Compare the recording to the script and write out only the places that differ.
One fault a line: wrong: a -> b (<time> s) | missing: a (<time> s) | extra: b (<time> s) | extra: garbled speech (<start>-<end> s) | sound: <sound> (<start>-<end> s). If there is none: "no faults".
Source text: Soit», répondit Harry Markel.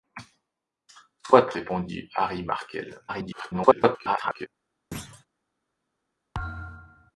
extra: garbled speech (3.1-4.5 s)
sound: thud (4.9-5.3 s)
sound: thud (6.3-7.1 s)